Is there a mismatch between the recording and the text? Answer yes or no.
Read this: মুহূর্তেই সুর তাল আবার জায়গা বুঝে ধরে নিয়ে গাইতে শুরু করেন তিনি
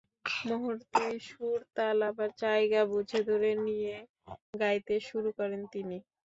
no